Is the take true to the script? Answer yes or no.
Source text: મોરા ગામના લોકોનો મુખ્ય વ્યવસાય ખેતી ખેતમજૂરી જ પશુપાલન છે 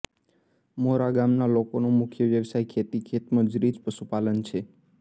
yes